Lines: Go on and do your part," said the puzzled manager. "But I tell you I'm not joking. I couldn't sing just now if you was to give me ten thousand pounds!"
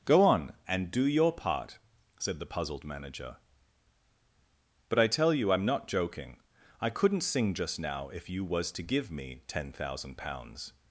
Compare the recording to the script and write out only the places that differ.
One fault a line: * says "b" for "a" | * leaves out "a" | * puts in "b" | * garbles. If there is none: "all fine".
all fine